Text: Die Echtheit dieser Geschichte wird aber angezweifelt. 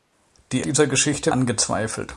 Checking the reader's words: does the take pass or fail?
fail